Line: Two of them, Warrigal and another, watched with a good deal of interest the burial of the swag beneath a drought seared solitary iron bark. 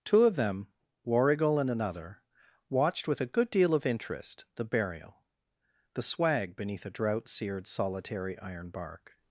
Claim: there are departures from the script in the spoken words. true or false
true